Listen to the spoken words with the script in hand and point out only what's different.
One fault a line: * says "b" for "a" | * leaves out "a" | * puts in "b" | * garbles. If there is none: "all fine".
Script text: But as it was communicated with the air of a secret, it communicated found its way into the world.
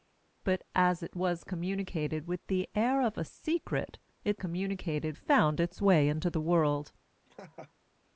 all fine